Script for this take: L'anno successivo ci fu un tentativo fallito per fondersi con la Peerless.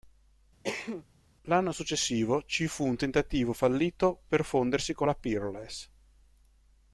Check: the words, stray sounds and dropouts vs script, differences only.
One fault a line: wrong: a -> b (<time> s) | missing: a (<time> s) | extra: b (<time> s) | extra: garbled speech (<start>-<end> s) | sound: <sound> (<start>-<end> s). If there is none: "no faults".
sound: cough (0.6-1.1 s)